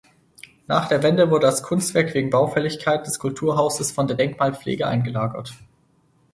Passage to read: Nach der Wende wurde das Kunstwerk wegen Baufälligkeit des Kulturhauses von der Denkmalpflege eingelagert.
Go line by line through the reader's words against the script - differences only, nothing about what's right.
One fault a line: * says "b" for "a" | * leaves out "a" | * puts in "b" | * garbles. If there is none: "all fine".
all fine